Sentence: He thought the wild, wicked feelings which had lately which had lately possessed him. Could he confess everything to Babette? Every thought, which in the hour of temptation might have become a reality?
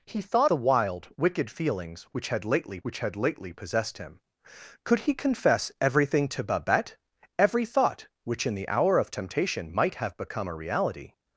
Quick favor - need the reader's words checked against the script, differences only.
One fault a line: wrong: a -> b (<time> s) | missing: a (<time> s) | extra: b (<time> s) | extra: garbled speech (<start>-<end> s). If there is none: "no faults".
no faults